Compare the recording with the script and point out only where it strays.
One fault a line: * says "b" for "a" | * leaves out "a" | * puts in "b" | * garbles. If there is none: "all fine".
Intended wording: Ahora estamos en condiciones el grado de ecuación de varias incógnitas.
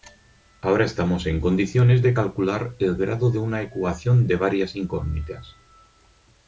* puts in "de calcular"
* puts in "una"